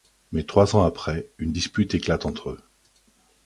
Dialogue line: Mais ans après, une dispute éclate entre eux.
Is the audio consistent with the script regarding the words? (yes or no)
no